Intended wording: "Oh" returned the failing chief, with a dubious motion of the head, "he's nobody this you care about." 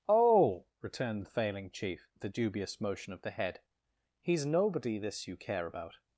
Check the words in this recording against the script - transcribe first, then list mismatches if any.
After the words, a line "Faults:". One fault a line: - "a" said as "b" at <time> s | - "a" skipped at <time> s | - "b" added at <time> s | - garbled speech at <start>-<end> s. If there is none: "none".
"Oh" returned the failing chief, with a dubious motion of the head, "he's nobody this you care about."
Faults:
none